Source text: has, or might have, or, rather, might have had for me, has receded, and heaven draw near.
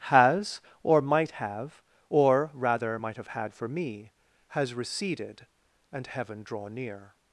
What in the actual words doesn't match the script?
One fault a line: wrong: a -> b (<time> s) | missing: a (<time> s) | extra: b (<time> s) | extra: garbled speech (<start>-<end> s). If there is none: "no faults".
no faults